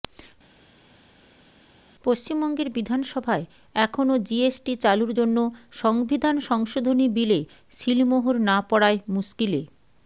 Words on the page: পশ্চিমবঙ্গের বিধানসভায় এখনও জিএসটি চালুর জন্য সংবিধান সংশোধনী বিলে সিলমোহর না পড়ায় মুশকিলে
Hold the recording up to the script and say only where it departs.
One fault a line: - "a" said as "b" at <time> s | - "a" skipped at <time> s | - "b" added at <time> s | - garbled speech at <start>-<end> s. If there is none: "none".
none